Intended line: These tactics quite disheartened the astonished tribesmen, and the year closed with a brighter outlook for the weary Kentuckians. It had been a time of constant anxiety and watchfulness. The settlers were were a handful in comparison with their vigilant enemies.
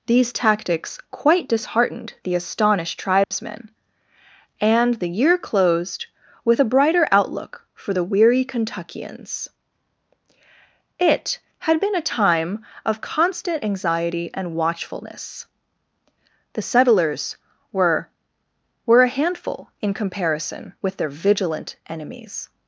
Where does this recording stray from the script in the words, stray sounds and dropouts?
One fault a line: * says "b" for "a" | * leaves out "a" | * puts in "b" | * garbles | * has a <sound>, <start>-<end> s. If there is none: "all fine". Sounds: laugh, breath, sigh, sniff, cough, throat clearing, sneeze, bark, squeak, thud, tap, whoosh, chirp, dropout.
* has a dropout, 3.2-3.3 s